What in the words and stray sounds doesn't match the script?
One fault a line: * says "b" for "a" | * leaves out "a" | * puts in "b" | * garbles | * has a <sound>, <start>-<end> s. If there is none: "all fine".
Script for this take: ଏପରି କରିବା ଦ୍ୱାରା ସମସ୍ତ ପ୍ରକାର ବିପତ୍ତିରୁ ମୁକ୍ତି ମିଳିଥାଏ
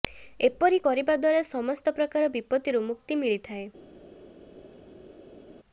all fine